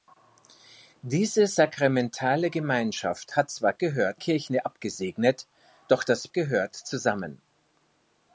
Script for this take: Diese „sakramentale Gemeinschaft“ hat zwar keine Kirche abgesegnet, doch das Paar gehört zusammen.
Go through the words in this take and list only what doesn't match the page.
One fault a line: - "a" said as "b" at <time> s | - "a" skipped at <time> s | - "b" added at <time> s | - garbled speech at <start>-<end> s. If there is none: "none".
- "keine" said as "gehört" at 3.7 s
- "Paar" skipped at 6.3 s